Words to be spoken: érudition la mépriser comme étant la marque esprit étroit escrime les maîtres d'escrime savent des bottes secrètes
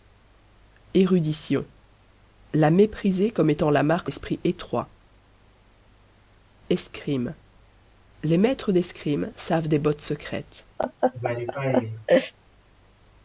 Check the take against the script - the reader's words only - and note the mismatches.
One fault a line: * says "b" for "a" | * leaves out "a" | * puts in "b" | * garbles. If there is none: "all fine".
all fine